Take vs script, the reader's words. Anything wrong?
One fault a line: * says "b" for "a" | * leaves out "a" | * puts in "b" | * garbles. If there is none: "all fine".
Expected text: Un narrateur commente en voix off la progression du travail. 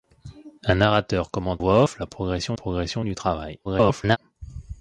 * leaves out "en"
* puts in "progression"
* garbles